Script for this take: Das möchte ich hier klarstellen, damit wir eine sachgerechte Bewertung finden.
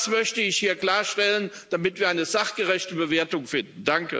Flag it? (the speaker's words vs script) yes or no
no